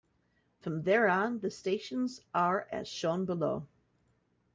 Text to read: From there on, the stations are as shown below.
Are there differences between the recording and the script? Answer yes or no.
no